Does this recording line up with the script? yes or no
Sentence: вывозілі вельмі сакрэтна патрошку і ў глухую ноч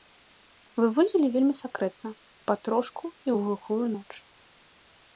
yes